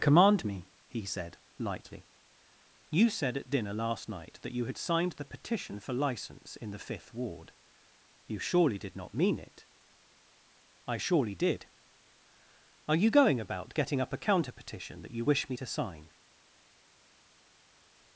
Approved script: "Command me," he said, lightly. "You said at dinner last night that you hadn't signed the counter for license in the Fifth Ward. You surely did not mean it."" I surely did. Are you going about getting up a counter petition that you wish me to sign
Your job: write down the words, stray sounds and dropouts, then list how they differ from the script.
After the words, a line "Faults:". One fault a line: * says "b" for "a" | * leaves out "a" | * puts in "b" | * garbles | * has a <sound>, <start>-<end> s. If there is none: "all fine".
"Command me," he said, lightly. "You said at dinner last night that you had signed the petition for license in the Fifth Ward. You surely did not mean it."" I surely did. Are you going about getting up a counter petition that you wish me to sign
Faults:
* says "had" for "hadn't"
* says "petition" for "counter"